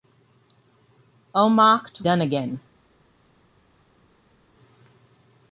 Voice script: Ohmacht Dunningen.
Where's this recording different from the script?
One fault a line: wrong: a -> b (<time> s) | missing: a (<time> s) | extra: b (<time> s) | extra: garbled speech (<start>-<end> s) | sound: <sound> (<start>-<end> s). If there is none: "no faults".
no faults